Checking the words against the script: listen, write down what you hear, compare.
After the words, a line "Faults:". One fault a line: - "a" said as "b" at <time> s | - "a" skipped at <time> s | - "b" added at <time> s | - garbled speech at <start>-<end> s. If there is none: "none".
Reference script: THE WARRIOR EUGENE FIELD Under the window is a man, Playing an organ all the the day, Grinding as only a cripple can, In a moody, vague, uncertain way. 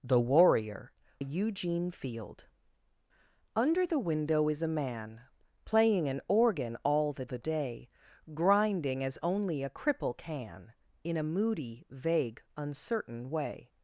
THE WARRIOR EUGENE FIELD Under the window is a man, Playing an organ all the the day, Grinding as only a cripple can, In a moody, vague, uncertain way.
Faults:
none